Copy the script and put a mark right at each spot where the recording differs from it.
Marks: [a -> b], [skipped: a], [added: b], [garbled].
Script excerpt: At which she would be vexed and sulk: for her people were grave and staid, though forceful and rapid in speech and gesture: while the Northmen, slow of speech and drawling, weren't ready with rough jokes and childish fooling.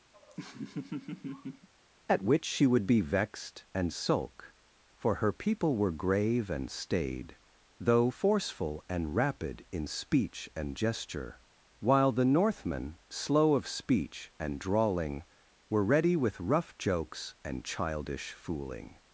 At which she would be vexed and sulk: for her people were grave and staid, though forceful and rapid in speech and gesture: while the Northmen, slow of speech and drawling, [weren't -> were] ready with rough jokes and childish fooling.